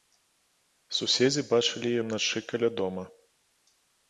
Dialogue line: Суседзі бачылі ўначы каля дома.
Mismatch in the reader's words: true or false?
false